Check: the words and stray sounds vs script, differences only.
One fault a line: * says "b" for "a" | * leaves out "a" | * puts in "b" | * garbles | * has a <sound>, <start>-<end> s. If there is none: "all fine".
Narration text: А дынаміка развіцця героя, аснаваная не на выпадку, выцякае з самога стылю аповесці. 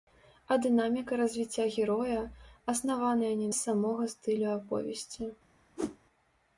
* leaves out "на выпадку выцякае"
* has a whoosh, 5.8-6.0 s